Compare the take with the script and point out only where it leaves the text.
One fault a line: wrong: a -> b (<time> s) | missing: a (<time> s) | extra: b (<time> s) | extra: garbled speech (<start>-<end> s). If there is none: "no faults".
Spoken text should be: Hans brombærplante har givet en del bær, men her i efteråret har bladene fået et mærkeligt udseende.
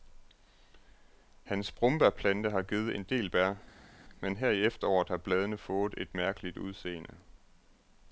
no faults